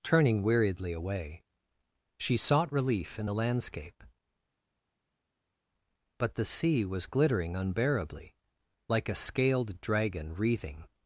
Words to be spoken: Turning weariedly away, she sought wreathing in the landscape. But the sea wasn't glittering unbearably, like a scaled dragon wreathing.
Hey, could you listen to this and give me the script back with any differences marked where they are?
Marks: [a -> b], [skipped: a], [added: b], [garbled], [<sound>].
Turning weariedly away, she sought [wreathing -> relief] in the landscape. But the sea [wasn't -> was] glittering unbearably, like a scaled dragon wreathing.